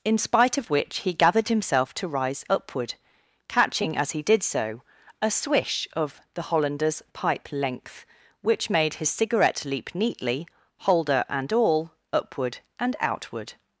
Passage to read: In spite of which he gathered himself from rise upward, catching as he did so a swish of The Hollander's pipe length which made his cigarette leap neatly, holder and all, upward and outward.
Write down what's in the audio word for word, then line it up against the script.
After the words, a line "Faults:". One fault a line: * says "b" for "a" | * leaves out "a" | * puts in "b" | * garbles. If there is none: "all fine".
In spite of which he gathered himself to rise upward, catching as he did so a swish of The Hollander's pipe length which made his cigarette leap neatly, holder and all, upward and outward.
Faults:
* says "to" for "from"